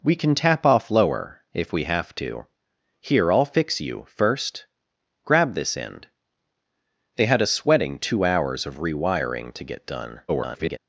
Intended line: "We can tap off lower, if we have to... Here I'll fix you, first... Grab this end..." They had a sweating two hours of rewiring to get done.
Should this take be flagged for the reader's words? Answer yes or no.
yes